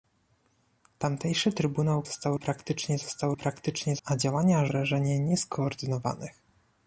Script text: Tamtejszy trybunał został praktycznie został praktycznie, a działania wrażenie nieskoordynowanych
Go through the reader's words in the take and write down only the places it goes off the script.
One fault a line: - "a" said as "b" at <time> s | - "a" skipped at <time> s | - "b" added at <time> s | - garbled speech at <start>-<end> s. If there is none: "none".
none